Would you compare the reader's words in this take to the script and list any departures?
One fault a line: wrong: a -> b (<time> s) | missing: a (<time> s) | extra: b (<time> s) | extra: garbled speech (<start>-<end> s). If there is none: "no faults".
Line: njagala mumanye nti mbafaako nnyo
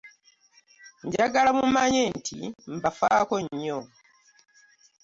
no faults